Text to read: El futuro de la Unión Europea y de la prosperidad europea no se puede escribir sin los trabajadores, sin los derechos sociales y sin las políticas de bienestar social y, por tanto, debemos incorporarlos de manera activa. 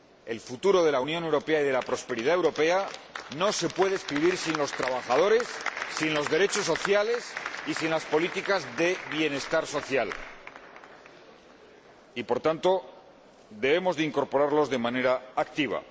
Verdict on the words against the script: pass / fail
pass